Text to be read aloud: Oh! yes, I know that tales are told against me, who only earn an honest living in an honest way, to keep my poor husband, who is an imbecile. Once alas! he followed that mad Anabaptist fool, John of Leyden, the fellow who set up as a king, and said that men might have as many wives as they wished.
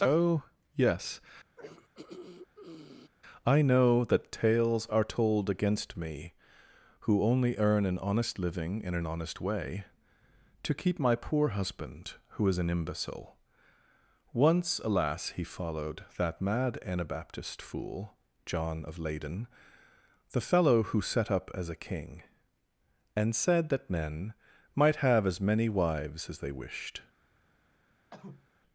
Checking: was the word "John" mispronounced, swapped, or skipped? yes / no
no